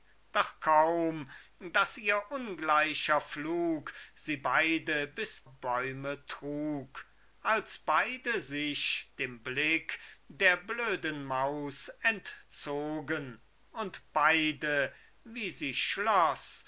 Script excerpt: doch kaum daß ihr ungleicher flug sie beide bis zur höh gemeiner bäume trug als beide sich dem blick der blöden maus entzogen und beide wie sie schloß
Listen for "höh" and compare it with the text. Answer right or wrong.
wrong